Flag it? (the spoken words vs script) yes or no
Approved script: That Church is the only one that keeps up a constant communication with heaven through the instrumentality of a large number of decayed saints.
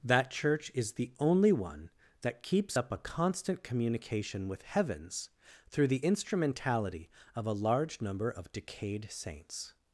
yes